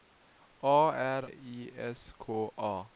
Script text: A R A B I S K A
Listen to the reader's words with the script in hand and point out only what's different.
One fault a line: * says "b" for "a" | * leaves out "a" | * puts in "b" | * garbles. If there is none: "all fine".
* leaves out "A B"